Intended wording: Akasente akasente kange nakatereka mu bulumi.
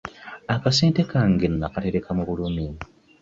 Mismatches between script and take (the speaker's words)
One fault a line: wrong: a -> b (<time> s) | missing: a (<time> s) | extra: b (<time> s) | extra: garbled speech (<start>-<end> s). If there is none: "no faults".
missing: akasente (1.0 s)